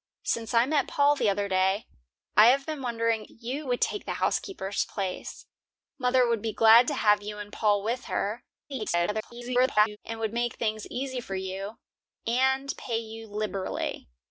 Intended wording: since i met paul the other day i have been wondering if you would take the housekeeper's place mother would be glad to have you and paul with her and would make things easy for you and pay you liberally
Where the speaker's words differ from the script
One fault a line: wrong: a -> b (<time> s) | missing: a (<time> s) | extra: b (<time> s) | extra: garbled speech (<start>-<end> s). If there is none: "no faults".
missing: if (3.3 s)
extra: garbled speech (8.7-10.0 s)